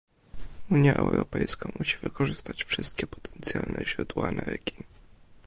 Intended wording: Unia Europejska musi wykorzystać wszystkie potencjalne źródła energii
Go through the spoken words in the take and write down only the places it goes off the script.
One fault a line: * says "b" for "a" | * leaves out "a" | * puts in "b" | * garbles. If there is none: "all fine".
all fine